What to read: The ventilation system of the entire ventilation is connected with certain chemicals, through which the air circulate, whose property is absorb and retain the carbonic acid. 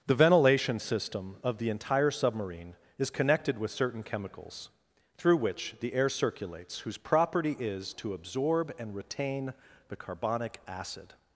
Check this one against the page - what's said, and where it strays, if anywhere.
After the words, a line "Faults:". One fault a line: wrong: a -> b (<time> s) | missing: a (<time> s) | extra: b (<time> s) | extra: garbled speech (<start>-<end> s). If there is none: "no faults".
The ventilation system of the entire submarine is connected with certain chemicals, through which the air circulates, whose property is to absorb and retain the carbonic acid.
Faults:
wrong: ventilation -> submarine (2.1 s)
wrong: circulate -> circulates (6.1 s)
extra: to (8.0 s)